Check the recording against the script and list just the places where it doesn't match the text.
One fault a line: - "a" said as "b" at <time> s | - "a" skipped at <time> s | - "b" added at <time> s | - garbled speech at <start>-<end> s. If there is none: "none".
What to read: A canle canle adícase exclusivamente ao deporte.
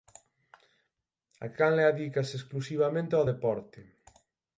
- "canle" skipped at 1.8 s